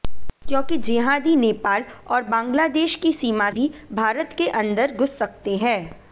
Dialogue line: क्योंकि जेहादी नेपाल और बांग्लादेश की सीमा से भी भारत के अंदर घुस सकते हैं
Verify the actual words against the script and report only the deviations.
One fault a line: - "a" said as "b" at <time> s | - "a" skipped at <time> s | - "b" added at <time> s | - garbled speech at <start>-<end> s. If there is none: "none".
- "से" skipped at 3.5 s